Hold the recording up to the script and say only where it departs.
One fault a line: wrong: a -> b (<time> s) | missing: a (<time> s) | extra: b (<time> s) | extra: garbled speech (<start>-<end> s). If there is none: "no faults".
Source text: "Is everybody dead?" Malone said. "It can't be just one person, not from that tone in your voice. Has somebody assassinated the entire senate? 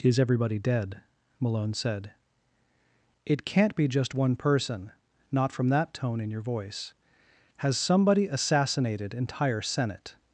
missing: the (9.1 s)